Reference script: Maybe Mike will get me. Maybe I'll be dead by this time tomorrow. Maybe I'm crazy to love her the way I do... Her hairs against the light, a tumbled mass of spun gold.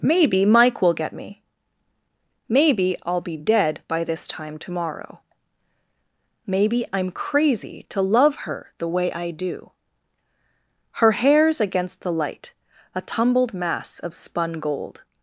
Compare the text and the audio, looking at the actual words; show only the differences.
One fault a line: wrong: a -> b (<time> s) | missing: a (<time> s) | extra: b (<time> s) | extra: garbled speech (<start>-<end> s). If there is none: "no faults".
no faults